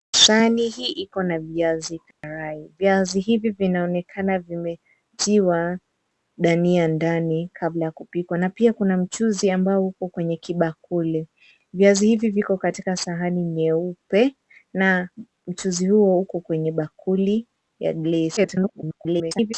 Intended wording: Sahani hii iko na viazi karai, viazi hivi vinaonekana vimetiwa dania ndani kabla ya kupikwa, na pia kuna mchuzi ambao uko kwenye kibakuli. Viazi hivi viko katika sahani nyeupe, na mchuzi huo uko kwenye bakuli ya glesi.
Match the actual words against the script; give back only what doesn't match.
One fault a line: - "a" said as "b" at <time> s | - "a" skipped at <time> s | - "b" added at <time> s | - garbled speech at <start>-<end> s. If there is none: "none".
- garbled speech at 18.4-19.5 s